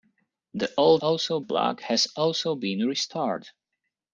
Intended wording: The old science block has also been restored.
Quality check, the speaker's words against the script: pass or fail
fail